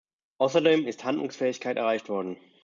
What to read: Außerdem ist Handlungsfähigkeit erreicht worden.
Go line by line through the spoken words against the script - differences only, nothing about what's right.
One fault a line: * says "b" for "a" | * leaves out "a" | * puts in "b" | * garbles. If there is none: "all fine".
all fine